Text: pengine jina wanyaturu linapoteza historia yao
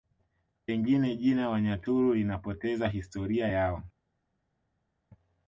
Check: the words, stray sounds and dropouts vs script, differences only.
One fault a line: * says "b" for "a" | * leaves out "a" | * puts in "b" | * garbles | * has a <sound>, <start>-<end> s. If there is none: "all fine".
all fine